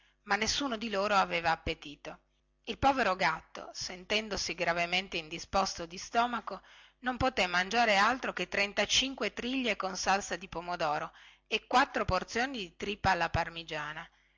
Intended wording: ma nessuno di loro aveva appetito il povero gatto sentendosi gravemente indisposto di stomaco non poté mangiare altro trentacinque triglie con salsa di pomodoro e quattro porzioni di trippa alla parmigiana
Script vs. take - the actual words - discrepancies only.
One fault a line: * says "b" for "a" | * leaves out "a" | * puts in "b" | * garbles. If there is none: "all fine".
* puts in "che"